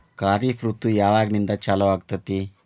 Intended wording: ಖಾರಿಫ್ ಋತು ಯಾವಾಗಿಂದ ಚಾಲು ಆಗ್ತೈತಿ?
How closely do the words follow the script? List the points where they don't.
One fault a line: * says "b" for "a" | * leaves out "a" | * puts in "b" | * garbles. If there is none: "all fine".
all fine